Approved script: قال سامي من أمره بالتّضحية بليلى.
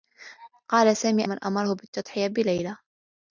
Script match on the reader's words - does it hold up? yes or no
yes